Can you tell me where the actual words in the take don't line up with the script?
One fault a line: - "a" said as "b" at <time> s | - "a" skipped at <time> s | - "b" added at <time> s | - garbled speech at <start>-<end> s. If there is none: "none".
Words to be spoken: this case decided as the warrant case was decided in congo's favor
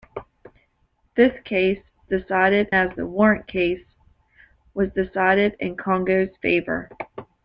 none